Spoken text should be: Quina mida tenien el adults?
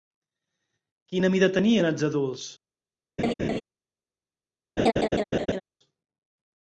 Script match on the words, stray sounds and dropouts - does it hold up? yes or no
no